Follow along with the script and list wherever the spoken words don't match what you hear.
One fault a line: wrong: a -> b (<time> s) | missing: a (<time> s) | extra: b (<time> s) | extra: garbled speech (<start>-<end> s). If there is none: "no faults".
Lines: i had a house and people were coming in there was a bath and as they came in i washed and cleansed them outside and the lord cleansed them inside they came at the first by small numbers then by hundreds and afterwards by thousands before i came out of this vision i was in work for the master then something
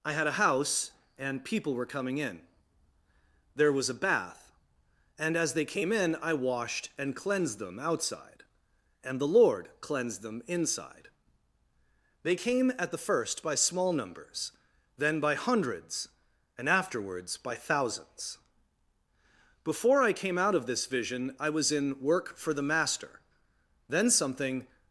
no faults